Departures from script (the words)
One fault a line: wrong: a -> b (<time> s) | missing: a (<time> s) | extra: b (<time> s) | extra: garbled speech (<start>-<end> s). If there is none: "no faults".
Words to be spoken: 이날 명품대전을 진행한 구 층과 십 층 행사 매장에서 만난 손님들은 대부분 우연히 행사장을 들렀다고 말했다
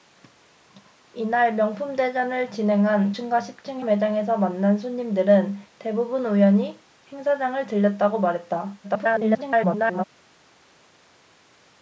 missing: 구 (3.1 s)
missing: 행사 (3.8 s)
extra: garbled speech (8.8-10.0 s)